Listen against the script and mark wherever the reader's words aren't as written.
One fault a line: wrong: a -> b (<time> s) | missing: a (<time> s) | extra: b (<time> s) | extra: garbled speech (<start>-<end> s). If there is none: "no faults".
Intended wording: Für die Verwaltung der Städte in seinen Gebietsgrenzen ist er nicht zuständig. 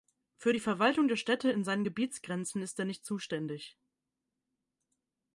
no faults